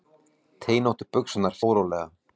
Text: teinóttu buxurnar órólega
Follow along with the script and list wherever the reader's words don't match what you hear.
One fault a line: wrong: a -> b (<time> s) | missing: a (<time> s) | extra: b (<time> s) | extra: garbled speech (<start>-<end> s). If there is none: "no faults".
no faults